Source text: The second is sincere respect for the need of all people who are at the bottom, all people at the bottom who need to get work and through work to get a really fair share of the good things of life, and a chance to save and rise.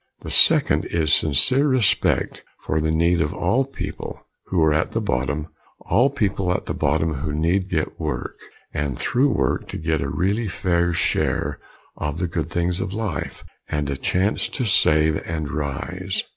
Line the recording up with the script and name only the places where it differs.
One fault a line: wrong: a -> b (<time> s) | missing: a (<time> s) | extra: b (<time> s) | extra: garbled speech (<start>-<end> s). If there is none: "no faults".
missing: to (7.7 s)